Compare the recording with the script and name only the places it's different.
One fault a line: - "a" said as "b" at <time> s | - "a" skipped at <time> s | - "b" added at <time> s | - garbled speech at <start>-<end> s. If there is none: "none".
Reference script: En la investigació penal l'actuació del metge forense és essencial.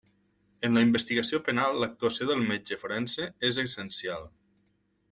none